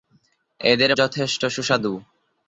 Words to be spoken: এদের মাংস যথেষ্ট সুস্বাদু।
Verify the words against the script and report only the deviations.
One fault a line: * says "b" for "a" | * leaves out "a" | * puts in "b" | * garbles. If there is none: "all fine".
* leaves out "মাংস"